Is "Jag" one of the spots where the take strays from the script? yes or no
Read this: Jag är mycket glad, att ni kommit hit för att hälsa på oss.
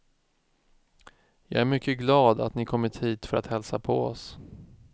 no